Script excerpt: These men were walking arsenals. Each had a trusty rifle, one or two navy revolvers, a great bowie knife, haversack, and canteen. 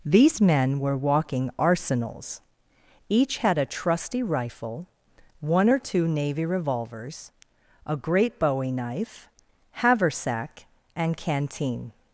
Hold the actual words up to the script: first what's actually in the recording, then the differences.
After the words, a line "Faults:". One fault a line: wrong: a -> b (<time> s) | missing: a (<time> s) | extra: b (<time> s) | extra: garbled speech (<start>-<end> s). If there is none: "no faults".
These men were walking arsenals. Each had a trusty rifle, one or two navy revolvers, a great bowie knife, haversack, and canteen.
Faults:
no faults